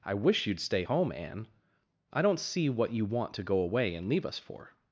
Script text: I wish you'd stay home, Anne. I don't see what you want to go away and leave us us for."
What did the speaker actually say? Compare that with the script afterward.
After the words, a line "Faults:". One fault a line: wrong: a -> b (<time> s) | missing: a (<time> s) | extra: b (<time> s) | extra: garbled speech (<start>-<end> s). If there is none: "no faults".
I wish you'd stay home, Anne. I don't see what you want to go away and leave us for."
Faults:
missing: us (4.4 s)